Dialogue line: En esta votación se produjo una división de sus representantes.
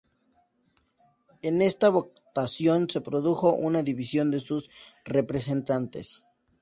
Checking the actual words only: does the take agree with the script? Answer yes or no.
yes